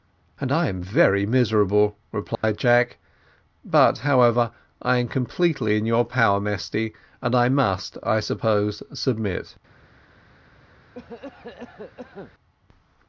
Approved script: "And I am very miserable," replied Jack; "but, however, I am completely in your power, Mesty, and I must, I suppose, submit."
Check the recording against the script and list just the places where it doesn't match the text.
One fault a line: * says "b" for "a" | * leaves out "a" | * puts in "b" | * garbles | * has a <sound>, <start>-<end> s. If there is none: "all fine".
* has a dropout, 2.3-2.4 s
* has a cough, 10.9-12.3 s